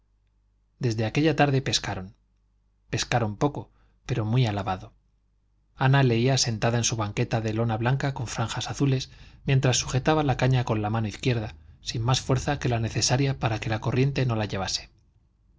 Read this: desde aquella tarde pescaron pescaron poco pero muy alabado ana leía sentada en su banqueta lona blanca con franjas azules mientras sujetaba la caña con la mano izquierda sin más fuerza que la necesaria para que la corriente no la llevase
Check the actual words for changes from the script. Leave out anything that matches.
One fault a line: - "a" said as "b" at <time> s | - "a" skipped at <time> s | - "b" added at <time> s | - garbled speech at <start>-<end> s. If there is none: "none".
- "de" added at 7.4 s